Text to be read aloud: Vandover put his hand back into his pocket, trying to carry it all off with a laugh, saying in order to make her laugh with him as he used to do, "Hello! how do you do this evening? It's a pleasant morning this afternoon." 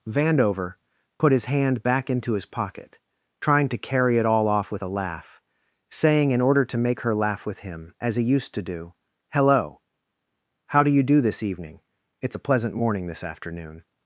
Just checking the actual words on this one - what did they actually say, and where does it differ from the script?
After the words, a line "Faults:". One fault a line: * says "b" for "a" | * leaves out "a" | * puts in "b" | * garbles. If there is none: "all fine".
Vandover put his hand back into his pocket, trying to carry it all off with a laugh, saying in order to make her laugh with him as he used to do, "Hello! how do you do this evening? It's a pleasant morning this afternoon."
Faults:
all fine